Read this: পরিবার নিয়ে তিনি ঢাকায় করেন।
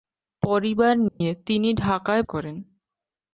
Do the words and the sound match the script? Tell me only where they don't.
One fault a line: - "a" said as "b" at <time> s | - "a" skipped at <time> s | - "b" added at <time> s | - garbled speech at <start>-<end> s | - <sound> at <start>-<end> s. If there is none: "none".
- dropout at 1.1-1.2 s